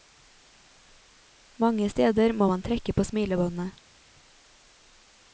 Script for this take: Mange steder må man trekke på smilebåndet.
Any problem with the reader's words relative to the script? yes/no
no